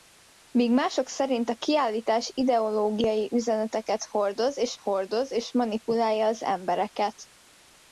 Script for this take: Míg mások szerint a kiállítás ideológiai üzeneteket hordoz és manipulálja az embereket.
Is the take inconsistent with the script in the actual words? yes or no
yes